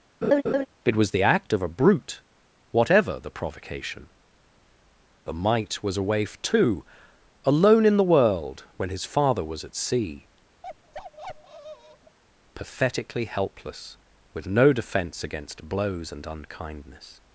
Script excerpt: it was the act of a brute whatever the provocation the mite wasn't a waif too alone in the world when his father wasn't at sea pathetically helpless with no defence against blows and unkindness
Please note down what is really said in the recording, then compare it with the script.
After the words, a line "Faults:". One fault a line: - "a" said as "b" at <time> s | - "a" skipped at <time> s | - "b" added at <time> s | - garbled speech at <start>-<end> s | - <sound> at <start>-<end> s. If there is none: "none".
it was the act of a brute whatever the provocation the mite was a waif too alone in the world when his father was at sea pathetically helpless with no defence against blows and unkindness
Faults:
- laugh at 0.2-0.7 s
- "wasn't" said as "was" at 5.8 s
- "wasn't" said as "was" at 9.4 s
- bark at 10.6-12.2 s